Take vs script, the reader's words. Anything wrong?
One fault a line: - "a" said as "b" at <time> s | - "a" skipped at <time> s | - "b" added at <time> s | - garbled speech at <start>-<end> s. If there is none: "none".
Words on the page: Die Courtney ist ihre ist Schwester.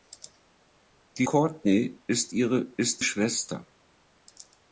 none